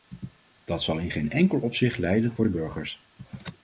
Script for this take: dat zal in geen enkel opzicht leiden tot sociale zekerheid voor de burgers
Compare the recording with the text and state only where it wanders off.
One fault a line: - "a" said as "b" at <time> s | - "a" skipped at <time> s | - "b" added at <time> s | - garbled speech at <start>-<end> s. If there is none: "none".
- "tot sociale zekerheid" skipped at 2.3 s